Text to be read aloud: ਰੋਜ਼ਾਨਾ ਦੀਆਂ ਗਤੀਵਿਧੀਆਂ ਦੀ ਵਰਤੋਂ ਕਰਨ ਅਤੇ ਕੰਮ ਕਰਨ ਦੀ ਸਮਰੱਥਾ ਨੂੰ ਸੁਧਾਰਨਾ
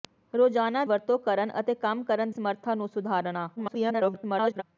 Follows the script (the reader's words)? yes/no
no